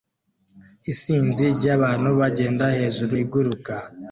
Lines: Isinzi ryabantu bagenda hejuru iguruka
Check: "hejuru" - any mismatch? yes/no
no